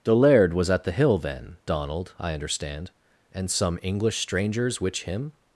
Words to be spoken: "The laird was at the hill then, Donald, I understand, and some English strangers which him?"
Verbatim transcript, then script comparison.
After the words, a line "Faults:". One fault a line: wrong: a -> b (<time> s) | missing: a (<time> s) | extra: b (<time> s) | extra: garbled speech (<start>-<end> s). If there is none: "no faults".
"The laird was at the hill then, Donald, I understand, and some English strangers which him?"
Faults:
no faults